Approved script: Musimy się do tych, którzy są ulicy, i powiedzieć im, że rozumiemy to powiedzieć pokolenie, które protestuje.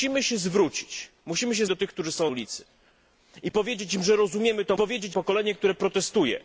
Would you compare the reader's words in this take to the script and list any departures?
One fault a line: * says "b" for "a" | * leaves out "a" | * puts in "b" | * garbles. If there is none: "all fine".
all fine